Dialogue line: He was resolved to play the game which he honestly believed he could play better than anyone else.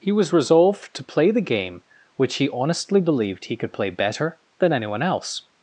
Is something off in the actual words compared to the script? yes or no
no